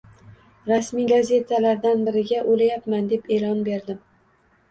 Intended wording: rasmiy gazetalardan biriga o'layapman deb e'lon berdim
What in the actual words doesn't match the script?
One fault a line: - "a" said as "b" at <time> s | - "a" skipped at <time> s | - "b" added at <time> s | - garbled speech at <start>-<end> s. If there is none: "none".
none